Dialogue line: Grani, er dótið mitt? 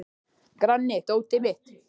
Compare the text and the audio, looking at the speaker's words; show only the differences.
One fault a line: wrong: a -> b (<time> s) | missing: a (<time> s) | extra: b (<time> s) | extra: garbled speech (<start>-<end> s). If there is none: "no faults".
no faults